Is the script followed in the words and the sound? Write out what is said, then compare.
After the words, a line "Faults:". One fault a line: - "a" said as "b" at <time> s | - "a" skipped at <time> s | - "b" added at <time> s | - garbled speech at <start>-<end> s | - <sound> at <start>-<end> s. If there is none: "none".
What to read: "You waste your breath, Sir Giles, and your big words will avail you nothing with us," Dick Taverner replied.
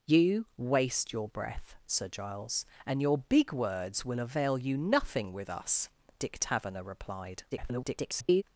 "You waste your breath, Sir Giles, and your big words will avail you nothing with us," Dick Taverner replied. [garbled]
Faults:
- garbled speech at 7.5-8.4 s